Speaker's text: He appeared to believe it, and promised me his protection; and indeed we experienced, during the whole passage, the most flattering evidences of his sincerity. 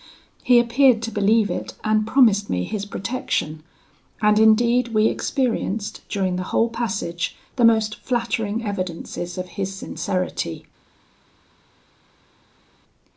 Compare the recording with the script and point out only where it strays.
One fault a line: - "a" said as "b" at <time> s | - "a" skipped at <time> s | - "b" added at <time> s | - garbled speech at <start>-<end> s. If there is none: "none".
none